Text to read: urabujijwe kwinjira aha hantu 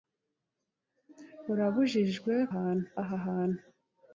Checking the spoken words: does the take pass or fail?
fail